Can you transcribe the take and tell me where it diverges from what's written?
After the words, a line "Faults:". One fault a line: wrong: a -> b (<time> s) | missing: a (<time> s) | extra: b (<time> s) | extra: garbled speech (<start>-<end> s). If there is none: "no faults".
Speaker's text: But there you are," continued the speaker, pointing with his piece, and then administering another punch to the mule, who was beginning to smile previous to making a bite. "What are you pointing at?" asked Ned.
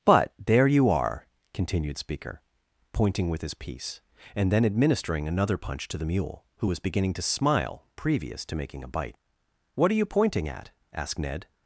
But there you are," continued speaker, pointing with his piece, and then administering another punch to the mule, who was beginning to smile previous to making a bite. "What are you pointing at?" asked Ned.
Faults:
missing: the (2.0 s)